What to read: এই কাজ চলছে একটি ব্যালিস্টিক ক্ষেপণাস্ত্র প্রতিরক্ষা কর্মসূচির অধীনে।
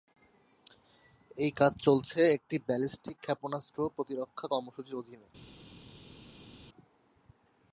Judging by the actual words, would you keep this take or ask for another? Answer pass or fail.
pass